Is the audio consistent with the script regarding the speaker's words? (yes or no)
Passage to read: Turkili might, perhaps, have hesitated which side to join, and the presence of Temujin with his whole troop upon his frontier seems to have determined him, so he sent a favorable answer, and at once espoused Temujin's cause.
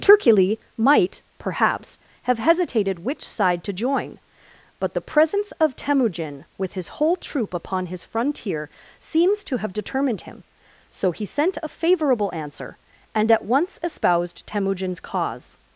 no